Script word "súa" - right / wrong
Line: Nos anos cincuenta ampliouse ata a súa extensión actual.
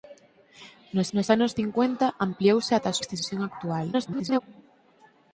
wrong